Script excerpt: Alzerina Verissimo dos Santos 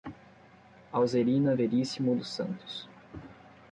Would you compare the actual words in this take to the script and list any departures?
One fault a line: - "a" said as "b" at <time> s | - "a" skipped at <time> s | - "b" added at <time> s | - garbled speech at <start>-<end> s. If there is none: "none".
none